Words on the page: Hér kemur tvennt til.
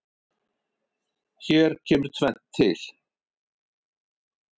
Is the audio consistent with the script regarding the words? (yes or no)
yes